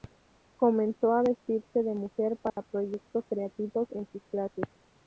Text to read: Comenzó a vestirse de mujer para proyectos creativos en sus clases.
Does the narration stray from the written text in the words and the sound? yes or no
yes